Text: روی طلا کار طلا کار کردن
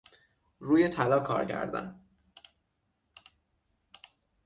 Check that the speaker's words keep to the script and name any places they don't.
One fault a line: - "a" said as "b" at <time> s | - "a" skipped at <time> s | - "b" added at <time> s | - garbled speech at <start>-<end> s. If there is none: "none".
- "طلا کار" skipped at 1.5 s